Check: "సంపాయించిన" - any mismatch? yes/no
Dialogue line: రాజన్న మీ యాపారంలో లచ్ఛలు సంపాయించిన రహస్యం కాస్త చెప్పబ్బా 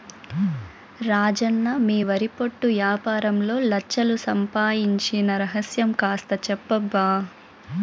no